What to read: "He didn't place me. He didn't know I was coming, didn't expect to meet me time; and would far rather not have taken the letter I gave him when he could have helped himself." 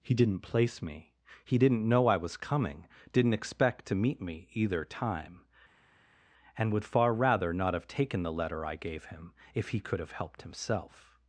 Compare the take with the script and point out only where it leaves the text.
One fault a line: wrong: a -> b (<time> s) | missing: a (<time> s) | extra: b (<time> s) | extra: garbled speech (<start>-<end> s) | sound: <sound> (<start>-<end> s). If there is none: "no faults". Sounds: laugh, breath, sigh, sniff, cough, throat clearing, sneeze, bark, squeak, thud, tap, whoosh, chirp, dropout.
extra: either (4.5 s)
wrong: when -> if (9.5 s)